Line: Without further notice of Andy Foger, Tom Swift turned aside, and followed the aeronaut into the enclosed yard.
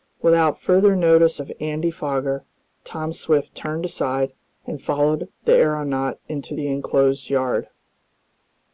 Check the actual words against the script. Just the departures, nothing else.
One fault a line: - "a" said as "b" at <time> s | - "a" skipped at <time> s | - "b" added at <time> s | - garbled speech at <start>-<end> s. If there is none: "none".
none